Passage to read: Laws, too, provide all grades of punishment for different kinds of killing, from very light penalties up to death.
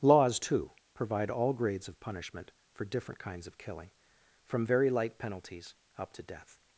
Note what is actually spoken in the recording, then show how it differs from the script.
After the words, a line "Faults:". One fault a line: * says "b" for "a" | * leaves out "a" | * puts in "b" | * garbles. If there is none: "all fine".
Laws, too, provide all grades of punishment for different kinds of killing, from very light penalties up to death.
Faults:
all fine